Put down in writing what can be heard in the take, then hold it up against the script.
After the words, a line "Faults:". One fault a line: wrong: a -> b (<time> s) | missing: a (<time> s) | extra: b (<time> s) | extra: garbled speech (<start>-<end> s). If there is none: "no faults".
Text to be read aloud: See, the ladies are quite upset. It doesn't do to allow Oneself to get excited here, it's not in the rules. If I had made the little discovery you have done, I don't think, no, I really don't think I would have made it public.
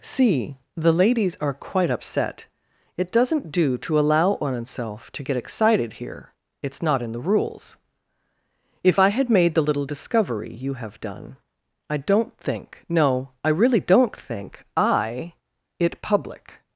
See, the ladies are quite upset. It doesn't do to allow Oneself to get excited here, it's not in the rules. If I had made the little discovery you have done, I don't think, no, I really don't think I it public.
Faults:
missing: would have made (15.3 s)